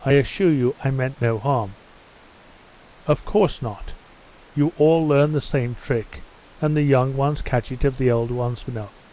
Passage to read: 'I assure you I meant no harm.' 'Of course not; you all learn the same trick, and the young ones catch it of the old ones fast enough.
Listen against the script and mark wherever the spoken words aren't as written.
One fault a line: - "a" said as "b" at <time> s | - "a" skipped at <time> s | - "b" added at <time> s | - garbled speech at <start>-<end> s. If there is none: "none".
- "fast" skipped at 8.6 s